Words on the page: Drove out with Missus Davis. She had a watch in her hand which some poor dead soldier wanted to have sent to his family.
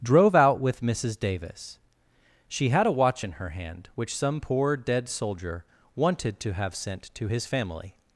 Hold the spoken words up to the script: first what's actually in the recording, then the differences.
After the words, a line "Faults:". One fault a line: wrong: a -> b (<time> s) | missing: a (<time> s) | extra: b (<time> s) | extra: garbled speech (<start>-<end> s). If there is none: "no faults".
Drove out with Missus Davis. She had a watch in her hand which some poor dead soldier wanted to have sent to his family.
Faults:
no faults